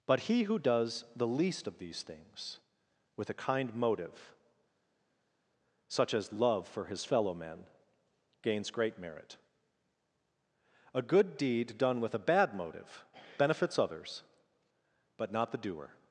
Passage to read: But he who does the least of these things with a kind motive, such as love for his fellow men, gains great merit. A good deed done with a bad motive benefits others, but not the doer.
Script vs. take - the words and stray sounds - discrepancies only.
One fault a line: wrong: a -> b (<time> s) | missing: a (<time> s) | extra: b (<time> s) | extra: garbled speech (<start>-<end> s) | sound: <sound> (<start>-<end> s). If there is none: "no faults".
no faults